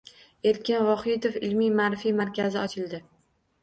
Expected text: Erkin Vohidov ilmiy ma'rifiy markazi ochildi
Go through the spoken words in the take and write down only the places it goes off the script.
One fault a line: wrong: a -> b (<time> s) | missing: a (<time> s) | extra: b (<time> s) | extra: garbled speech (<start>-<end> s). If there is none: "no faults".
no faults